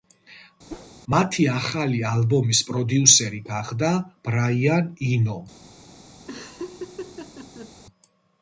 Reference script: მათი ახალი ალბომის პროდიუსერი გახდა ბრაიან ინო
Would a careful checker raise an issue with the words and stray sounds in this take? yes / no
yes